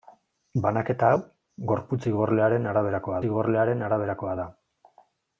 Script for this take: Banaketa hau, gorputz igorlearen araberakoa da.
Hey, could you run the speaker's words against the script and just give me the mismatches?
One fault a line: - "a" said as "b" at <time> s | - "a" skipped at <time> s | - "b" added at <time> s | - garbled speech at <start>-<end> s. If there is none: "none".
- "igorlearen araberakoa" added at 3.3 s